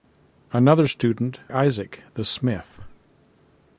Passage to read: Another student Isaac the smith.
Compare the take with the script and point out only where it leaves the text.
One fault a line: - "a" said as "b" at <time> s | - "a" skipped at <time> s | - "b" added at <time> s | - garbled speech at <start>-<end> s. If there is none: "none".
none